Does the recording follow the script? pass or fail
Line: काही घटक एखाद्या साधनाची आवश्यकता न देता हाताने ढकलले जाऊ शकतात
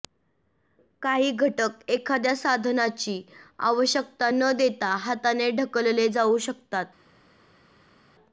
pass